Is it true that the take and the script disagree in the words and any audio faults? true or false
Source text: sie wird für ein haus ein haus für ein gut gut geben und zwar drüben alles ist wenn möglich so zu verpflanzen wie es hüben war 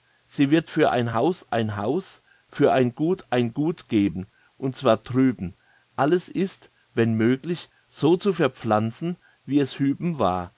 true